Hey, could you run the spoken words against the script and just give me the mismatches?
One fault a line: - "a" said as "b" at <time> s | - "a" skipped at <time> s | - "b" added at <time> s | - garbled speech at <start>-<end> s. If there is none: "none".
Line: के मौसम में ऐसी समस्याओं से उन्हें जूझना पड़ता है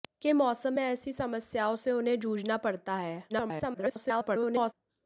- garbled speech at 3.3-4.7 s